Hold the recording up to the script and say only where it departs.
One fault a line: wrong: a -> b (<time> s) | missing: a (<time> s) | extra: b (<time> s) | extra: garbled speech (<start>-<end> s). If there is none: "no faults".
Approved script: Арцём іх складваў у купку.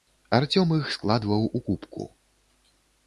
no faults